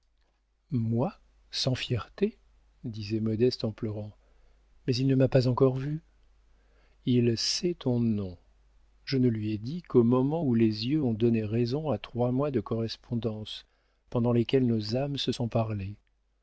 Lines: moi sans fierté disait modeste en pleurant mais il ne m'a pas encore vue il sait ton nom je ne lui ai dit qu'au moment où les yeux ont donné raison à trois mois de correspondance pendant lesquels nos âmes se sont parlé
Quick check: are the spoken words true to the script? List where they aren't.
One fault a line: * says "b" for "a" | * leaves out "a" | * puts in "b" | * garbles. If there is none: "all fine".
all fine